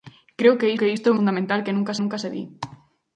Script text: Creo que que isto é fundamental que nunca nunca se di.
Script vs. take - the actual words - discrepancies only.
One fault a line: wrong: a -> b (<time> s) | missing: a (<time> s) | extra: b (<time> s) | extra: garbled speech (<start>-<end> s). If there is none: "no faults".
no faults